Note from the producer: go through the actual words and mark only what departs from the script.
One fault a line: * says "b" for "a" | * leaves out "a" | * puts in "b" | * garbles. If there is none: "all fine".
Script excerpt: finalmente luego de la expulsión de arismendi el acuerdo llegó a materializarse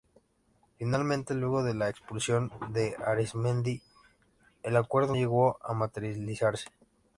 all fine